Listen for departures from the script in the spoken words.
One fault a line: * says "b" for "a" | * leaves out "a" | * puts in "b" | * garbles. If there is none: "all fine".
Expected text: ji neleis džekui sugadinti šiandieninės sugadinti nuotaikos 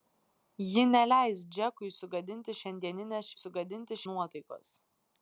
all fine